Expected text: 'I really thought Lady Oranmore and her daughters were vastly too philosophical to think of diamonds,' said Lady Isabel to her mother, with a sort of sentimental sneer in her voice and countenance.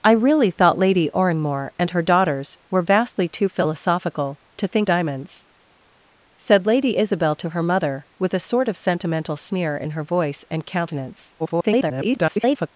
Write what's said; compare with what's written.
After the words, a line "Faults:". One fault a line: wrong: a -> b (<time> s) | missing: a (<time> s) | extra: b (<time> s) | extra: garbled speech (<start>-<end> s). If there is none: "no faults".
'I really thought Lady Oranmore and her daughters were vastly too philosophical to think diamonds,' said Lady Isabel to her mother, with a sort of sentimental sneer in her voice and countenance. [garbled]
Faults:
missing: of (4.9 s)
extra: garbled speech (11.4-12.7 s)